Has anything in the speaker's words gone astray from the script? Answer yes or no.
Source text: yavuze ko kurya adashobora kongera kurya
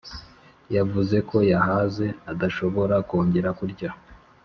yes